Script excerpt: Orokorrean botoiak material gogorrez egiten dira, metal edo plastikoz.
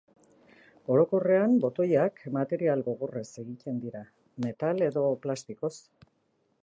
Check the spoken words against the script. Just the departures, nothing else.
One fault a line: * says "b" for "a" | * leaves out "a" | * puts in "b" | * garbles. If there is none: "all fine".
all fine